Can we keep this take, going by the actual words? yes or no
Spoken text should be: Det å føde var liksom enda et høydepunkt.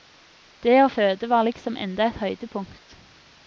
yes